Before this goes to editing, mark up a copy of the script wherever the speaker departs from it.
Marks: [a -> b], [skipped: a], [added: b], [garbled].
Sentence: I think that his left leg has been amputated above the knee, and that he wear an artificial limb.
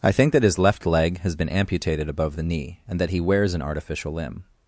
I think that his left leg has been amputated above the knee, and that he [wear -> wears] an artificial limb.